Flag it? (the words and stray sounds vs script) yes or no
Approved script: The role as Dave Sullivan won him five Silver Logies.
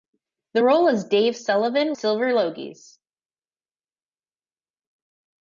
yes